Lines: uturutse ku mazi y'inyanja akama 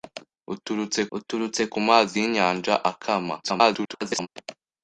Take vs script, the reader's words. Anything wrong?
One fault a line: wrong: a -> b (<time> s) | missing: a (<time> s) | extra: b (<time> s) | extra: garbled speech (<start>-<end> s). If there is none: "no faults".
extra: uturutse (1.2 s)
extra: garbled speech (3.4-4.3 s)